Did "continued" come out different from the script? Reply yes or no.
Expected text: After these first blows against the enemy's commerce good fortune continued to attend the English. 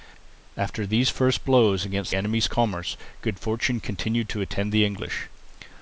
no